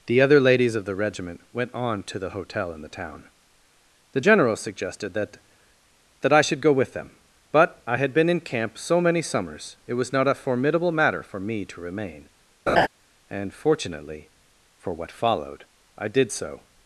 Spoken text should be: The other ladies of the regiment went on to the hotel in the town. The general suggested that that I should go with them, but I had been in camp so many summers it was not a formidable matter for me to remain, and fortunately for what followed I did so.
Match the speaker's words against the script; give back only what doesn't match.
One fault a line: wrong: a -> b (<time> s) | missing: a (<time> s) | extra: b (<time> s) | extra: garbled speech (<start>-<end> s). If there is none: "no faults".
no faults